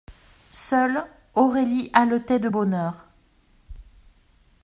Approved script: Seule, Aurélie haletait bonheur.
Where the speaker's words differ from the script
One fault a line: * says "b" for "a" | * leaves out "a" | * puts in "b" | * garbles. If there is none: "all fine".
* puts in "de"